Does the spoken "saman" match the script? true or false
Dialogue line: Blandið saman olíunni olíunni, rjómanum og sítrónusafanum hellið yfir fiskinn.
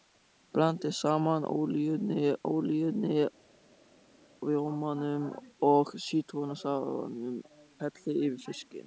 true